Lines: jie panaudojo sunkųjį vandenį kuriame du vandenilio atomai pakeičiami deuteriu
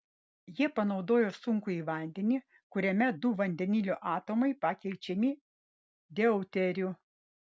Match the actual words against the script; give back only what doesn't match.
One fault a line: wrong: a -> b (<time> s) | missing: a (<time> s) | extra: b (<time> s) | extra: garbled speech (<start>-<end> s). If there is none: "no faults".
no faults